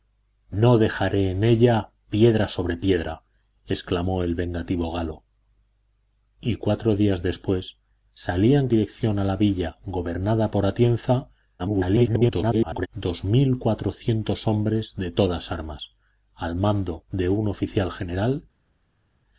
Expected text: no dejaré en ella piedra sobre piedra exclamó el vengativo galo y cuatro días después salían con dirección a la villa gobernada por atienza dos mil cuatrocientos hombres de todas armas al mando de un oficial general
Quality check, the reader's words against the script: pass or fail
fail